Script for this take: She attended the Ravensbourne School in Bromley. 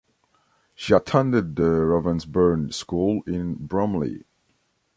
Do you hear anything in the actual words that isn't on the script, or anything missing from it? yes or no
no